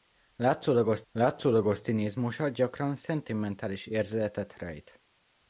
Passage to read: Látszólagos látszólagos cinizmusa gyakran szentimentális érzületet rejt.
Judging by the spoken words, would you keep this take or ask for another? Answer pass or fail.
pass